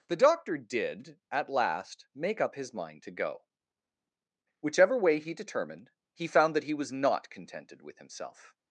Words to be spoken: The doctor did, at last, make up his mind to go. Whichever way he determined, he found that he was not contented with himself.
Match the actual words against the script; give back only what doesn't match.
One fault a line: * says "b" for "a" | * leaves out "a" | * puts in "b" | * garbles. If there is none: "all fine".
all fine